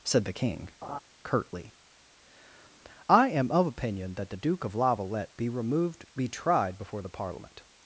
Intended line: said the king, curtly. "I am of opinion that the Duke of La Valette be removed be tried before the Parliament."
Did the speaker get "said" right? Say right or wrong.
right